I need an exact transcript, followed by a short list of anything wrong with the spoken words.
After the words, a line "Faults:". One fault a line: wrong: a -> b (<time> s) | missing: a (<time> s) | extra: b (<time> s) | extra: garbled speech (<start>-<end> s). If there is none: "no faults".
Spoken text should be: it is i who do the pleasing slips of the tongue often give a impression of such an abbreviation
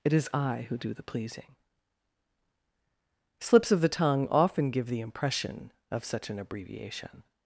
it is i who do the pleasing slips of the tongue often give the impression of such an abbreviation
Faults:
wrong: a -> the (4.9 s)